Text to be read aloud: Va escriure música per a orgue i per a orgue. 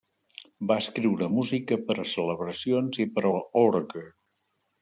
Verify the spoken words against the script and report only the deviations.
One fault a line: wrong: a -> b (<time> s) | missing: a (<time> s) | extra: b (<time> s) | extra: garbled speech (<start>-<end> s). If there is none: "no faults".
wrong: orgue -> celebracions (2.1 s)